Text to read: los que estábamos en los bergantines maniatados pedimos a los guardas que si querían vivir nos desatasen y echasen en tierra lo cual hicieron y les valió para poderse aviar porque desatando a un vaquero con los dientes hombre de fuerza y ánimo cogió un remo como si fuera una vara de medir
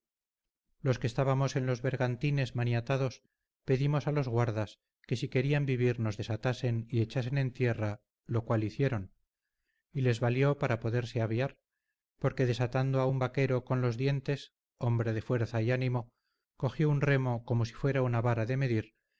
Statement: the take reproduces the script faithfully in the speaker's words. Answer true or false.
true